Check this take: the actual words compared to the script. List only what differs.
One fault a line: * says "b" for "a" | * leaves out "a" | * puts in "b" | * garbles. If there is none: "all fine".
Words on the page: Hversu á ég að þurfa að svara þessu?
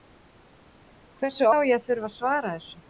all fine